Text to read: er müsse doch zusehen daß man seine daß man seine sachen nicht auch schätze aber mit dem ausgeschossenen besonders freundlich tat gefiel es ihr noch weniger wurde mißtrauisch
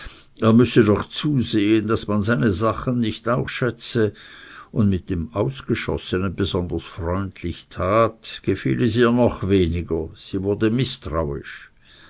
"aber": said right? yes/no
no